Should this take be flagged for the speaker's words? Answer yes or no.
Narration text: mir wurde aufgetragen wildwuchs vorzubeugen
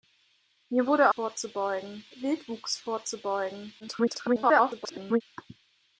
yes